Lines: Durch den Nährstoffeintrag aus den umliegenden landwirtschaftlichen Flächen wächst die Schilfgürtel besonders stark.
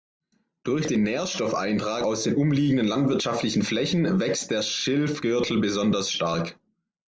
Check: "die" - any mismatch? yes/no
yes